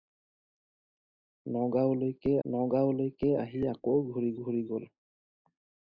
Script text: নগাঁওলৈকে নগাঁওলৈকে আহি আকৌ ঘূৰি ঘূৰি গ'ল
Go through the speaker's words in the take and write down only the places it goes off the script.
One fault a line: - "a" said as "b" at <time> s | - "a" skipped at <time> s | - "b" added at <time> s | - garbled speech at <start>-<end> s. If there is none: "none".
none